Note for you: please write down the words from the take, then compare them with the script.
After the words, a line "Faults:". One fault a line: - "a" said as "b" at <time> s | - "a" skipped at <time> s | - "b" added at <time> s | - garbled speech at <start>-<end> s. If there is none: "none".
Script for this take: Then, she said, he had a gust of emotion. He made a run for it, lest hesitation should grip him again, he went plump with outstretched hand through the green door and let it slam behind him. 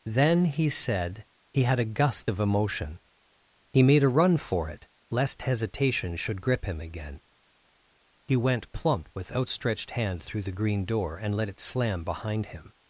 Then, he said, he had a gust of emotion. He made a run for it, lest hesitation should grip him again, he went plump with outstretched hand through the green door and let it slam behind him.
Faults:
- "she" said as "he" at 0.5 s